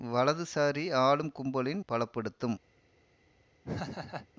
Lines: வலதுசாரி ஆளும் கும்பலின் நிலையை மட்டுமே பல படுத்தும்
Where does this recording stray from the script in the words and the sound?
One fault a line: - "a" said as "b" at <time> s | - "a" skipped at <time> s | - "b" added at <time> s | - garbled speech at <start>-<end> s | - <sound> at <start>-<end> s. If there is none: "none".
- "நிலையை மட்டுமே" skipped at 1.8 s
- laugh at 3.6-4.3 s